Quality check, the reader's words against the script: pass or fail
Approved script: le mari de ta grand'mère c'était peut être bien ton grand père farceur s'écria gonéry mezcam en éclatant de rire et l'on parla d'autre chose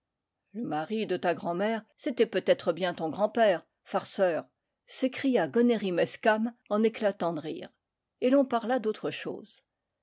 pass